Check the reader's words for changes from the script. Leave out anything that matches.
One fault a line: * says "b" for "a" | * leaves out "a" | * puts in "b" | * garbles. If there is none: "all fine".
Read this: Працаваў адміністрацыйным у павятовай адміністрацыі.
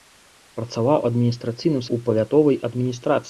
all fine